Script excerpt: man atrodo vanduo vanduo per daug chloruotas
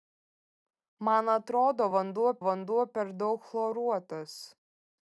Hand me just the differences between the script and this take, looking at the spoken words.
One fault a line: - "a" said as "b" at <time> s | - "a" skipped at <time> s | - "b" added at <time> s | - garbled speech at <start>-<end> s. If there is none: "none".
none